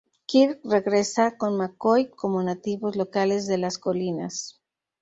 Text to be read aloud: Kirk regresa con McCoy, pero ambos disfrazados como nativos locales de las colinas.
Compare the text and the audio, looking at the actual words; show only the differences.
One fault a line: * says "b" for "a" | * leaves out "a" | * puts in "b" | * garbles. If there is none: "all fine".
* leaves out "pero ambos disfrazados"